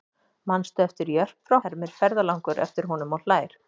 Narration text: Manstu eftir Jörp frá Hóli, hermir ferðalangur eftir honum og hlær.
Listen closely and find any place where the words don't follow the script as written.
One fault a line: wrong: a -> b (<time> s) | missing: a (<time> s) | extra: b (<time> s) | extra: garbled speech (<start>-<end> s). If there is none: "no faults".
missing: Hóli (1.6 s)